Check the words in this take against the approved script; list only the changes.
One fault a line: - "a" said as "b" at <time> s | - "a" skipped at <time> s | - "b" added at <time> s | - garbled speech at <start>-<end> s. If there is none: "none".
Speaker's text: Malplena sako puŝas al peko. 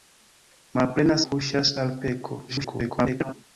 - "sako" skipped at 1.2 s
- garbled speech at 2.5-3.3 s